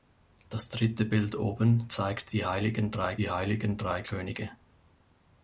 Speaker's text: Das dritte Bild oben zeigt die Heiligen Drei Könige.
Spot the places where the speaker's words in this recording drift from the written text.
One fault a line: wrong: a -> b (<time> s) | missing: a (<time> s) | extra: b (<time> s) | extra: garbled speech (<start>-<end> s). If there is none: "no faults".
extra: die Heiligen Drei (3.2 s)